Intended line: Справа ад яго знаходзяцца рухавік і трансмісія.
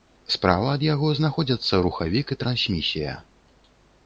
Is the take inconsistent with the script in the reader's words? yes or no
no